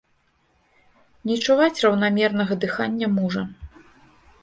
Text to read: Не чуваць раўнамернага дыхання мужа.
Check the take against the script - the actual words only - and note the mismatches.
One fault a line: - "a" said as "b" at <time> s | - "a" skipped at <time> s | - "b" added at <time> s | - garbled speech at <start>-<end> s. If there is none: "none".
none